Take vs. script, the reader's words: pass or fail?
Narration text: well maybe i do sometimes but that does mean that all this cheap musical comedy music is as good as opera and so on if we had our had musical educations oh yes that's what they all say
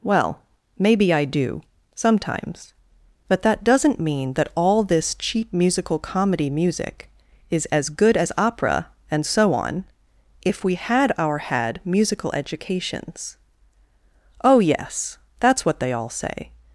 fail